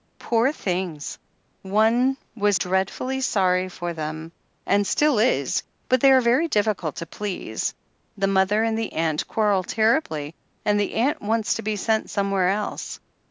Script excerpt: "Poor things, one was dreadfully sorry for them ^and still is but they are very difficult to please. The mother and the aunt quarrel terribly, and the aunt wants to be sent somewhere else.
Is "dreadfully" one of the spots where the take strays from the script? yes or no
no